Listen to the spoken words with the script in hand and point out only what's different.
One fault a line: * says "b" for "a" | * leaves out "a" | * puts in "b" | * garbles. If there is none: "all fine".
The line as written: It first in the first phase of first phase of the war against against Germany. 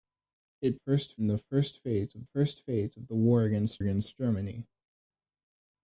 all fine